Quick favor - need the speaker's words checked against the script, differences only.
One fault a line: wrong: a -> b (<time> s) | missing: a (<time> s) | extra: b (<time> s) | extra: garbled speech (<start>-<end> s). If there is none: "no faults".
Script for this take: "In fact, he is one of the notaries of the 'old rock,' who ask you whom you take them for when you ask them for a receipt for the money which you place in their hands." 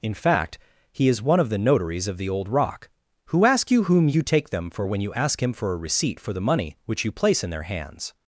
wrong: them -> him (5.4 s)